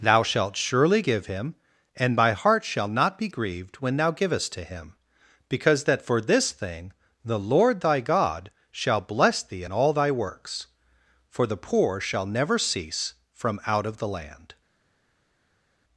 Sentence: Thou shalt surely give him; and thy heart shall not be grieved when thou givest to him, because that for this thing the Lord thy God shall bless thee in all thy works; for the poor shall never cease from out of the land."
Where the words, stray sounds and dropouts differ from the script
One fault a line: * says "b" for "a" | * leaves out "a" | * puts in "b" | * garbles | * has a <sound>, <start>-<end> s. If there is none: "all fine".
* says "my" for "thy"